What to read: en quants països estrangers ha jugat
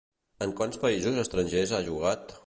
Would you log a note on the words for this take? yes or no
no